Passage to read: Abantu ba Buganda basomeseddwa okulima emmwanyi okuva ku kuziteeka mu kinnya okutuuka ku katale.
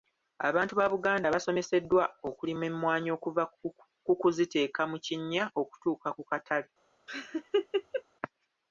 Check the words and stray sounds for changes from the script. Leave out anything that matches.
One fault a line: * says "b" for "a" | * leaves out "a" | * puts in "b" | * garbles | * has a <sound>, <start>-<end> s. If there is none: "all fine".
* has a laugh, 7.1-8.0 s